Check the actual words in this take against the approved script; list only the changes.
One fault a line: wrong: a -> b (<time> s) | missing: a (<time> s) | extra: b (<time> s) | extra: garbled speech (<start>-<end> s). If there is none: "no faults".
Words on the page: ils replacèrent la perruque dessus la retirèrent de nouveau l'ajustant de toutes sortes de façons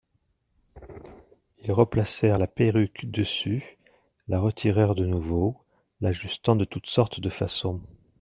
no faults